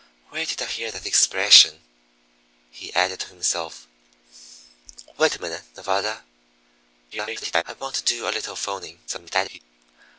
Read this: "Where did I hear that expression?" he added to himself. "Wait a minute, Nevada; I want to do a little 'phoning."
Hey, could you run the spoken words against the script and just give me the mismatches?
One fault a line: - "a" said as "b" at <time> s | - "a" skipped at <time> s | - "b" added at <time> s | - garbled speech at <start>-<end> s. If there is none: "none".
- garbled speech at 7.1-7.6 s
- garbled speech at 9.1-9.6 s